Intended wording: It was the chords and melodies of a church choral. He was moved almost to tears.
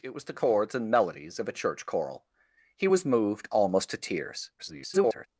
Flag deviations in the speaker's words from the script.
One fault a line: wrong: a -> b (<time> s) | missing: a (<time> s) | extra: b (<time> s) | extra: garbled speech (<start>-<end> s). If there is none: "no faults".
extra: garbled speech (4.6-5.3 s)